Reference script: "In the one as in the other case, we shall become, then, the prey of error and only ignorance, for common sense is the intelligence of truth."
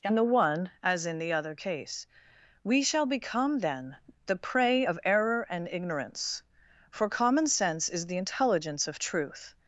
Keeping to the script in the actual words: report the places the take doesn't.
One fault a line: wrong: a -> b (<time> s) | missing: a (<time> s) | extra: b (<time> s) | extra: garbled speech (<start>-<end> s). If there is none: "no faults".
missing: only (5.7 s)